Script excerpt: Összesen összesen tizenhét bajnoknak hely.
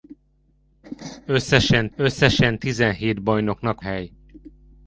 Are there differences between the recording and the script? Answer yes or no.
no